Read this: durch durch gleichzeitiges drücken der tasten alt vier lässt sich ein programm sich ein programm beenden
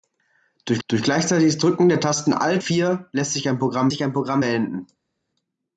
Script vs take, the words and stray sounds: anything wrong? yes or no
no